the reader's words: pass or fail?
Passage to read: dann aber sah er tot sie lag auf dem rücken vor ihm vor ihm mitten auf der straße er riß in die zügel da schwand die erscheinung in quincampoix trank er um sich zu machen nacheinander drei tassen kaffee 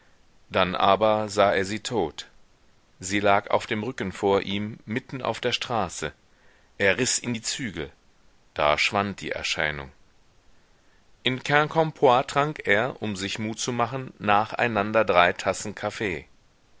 fail